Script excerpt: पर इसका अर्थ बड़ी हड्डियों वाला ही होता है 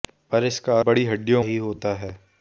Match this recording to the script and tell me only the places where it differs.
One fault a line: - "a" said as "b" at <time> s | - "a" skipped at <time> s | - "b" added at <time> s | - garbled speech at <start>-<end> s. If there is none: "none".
- "अर्थ" skipped at 0.8 s
- "वाला" skipped at 1.4 s